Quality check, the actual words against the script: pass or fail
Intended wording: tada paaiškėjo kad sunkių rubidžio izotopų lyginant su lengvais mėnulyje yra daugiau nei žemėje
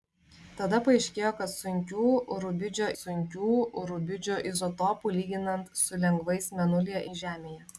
fail